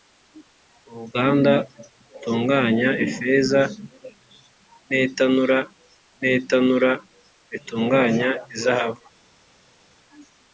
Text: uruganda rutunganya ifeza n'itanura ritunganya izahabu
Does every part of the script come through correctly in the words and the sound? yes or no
no